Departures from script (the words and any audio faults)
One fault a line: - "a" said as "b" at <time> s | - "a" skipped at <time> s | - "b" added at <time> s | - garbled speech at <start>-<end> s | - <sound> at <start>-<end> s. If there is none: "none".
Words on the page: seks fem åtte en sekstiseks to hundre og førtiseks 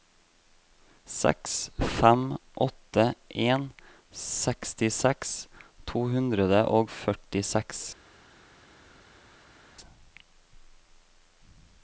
none